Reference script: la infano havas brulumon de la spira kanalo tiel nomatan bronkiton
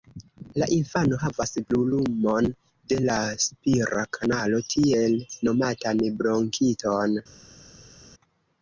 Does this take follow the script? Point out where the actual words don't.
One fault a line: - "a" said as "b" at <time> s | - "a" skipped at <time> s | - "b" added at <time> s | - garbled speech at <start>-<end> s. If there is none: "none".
none